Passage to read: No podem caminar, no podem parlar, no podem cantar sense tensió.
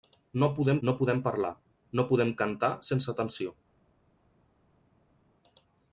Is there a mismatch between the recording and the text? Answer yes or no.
yes